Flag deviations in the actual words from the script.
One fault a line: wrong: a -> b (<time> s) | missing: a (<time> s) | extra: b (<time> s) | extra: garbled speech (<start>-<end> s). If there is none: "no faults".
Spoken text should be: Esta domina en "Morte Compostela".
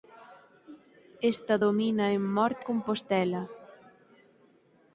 no faults